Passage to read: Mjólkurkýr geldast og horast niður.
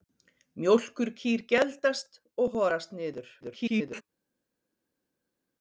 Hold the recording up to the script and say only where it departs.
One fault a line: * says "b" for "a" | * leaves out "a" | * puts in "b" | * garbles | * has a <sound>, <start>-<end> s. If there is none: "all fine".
* garbles